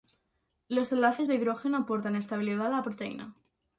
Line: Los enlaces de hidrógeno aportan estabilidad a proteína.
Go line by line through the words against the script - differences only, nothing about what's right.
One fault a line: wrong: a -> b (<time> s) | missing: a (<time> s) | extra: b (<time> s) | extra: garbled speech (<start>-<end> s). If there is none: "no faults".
extra: la (2.7 s)